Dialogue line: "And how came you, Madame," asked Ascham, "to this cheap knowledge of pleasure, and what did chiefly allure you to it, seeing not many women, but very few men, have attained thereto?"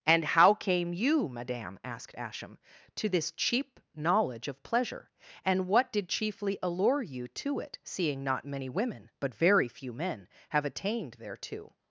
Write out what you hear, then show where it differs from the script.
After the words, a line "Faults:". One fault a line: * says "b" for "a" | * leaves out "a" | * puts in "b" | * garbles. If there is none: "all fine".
"And how came you, Madame," asked Ascham, "to this cheap knowledge of pleasure, and what did chiefly allure you to it, seeing not many women, but very few men, have attained thereto?"
Faults:
all fine